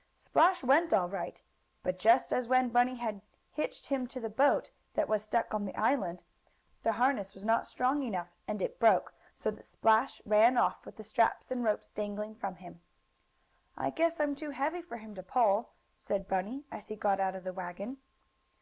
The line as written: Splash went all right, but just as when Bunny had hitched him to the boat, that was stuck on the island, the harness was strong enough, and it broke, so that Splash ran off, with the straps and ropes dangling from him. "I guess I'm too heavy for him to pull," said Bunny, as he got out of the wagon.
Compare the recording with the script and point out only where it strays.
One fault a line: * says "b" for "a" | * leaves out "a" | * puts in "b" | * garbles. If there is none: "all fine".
* puts in "not"